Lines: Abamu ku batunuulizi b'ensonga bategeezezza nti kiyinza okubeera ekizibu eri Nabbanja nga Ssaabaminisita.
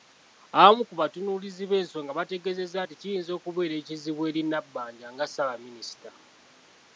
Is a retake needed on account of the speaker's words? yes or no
no